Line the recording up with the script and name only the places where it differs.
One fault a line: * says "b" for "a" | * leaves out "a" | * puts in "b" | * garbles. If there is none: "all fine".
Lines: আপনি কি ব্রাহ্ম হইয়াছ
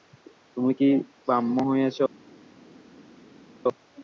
* says "তুমি" for "আপনি"